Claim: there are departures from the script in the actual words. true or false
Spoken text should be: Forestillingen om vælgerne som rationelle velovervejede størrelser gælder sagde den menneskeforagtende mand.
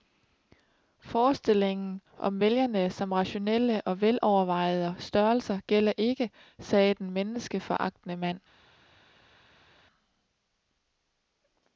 true